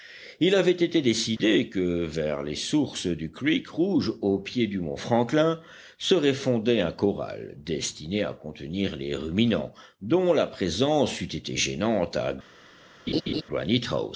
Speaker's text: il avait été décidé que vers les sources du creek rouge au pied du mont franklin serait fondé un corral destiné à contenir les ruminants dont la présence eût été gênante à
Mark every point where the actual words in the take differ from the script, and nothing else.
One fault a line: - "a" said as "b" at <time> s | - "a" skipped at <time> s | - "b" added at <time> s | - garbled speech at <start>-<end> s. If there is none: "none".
none